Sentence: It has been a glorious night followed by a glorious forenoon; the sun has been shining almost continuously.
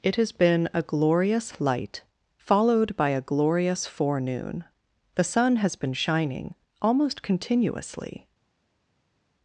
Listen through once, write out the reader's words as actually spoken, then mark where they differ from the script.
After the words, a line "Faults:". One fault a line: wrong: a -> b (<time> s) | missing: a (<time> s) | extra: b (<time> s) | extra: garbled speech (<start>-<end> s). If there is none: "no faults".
It has been a glorious light followed by a glorious forenoon; the sun has been shining almost continuously.
Faults:
wrong: night -> light (1.6 s)